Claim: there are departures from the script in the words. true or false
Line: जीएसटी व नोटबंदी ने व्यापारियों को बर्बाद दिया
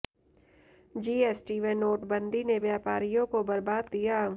false